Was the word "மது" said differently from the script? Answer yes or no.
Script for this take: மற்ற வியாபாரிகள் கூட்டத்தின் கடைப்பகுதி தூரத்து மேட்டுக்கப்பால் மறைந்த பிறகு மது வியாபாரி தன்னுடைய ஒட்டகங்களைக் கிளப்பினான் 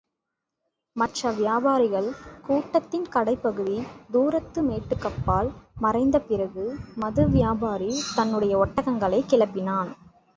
no